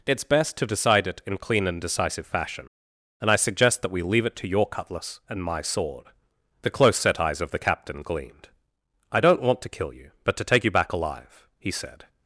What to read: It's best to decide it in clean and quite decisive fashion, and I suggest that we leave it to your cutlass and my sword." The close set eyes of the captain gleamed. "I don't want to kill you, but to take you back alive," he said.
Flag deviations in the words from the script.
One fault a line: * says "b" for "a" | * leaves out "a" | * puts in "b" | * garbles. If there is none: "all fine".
* leaves out "quite"